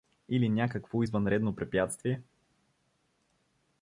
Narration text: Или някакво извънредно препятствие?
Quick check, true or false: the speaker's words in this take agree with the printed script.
true